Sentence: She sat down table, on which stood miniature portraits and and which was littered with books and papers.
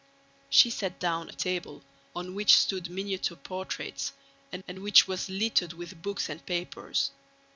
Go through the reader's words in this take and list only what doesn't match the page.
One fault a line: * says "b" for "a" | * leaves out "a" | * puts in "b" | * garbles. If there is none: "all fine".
all fine